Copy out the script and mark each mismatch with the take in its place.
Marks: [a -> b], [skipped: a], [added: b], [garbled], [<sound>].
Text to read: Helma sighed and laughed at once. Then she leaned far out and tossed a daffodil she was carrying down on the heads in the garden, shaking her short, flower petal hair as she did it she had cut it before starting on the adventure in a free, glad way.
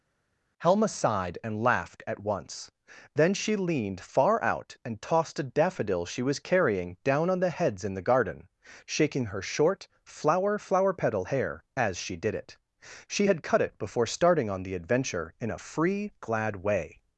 Helma sighed and laughed at once. Then she leaned far out and tossed a daffodil she was carrying down on the heads in the garden, shaking her short, flower [added: flower] petal hair as she did it she had cut it before starting on the adventure in a free, glad way.